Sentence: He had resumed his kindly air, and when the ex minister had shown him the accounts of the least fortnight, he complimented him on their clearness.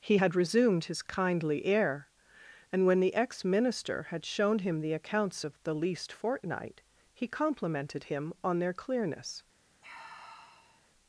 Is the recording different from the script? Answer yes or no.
no